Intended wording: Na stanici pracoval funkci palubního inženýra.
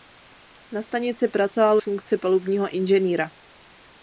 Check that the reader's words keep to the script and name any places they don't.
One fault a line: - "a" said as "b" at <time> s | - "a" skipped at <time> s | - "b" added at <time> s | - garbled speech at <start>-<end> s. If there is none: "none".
none